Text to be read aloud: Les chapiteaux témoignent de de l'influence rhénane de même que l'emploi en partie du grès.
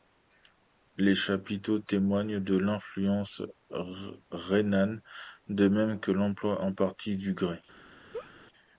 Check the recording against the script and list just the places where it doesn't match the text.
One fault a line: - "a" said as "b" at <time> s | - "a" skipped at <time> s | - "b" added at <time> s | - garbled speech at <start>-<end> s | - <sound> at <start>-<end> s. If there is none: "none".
- "de" skipped at 2.6 s
- laugh at 8.1-8.3 s